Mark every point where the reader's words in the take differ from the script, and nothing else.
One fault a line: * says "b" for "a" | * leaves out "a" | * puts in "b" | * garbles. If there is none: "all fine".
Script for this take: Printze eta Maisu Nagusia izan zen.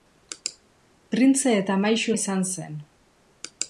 * leaves out "Nagusia"